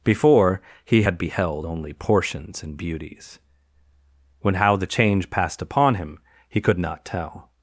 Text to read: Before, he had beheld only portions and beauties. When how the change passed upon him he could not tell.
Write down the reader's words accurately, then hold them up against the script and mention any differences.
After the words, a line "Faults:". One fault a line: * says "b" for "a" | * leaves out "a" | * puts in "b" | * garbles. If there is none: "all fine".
Before, he had beheld only portions and beauties. When how the change passed upon him he could not tell.
Faults:
all fine